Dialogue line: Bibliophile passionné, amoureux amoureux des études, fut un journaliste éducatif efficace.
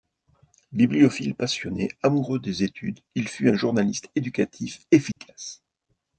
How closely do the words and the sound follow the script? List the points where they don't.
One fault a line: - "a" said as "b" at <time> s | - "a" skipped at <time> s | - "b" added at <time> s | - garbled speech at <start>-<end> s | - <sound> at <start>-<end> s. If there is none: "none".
- "amoureux" skipped at 2.4 s
- "il" added at 3.1 s
- dropout at 5.1-5.2 s